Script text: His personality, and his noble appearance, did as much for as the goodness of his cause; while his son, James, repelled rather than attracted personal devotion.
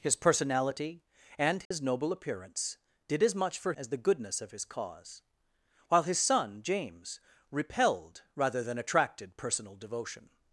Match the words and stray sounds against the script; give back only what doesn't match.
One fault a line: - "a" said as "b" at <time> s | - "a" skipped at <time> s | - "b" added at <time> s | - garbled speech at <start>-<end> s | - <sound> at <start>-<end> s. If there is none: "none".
- dropout at 1.6-1.7 s